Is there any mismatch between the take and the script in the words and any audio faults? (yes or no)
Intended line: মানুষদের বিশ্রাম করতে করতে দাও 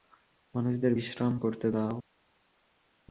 yes